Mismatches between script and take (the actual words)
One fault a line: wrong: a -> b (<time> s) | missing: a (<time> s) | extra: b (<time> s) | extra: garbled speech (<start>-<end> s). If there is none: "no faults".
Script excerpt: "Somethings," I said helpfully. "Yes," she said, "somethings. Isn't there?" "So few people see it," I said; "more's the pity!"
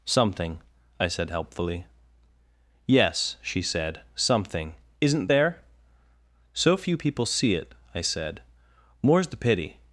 wrong: Somethings -> Something (0.1 s)
wrong: somethings -> something (4.2 s)